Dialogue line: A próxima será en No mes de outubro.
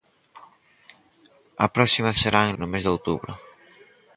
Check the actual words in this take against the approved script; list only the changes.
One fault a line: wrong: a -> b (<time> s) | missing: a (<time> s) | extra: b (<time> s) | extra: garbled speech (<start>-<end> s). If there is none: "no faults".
no faults